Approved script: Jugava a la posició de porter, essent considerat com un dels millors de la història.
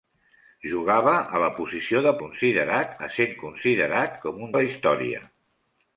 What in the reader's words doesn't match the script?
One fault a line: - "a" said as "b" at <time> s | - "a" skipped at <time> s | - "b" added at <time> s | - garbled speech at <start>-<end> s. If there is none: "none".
- "porter" said as "considerat" at 2.2 s
- "dels millors" skipped at 4.5 s